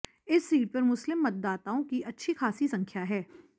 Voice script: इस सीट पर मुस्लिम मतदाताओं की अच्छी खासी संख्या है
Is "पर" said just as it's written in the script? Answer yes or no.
yes